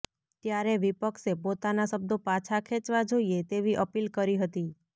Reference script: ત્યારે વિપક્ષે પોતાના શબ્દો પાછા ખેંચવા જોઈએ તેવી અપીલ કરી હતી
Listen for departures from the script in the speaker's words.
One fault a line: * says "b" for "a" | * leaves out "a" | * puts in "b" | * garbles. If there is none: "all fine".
all fine